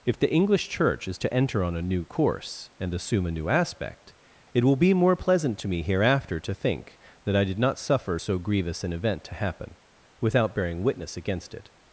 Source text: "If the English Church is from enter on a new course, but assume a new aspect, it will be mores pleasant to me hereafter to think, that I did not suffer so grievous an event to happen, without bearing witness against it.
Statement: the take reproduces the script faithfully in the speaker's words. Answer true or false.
false